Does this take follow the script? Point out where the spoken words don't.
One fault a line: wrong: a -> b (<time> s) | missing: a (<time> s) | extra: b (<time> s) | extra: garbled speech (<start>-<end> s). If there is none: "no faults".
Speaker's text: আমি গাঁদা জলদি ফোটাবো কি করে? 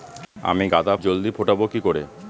no faults